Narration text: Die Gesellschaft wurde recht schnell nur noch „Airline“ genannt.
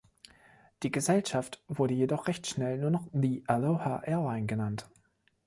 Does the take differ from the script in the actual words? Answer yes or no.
yes